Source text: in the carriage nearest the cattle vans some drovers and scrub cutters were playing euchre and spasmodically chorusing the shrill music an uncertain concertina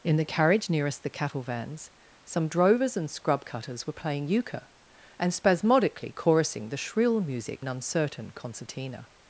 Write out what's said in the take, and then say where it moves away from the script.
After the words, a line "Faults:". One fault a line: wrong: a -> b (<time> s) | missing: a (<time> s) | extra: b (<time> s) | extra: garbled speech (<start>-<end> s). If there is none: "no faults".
in the carriage nearest the cattle vans some drovers and scrub cutters were playing euchre and spasmodically chorusing the shrill music an uncertain concertina
Faults:
no faults